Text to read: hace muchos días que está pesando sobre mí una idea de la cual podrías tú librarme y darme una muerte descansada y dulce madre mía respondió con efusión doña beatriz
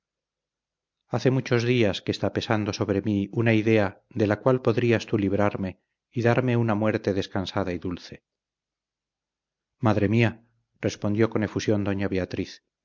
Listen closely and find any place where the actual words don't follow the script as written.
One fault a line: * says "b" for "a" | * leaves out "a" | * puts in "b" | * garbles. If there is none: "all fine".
all fine